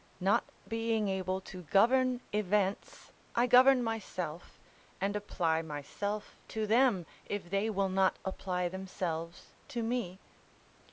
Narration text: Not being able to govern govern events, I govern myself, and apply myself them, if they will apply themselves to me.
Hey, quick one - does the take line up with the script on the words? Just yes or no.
no